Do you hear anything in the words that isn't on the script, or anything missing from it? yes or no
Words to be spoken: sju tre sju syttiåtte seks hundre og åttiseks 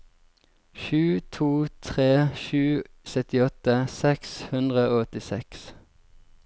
yes